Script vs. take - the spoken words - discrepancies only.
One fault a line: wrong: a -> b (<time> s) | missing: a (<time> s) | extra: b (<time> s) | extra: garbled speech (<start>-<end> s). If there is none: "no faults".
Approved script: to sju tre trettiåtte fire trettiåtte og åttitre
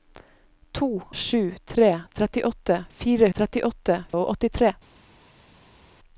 no faults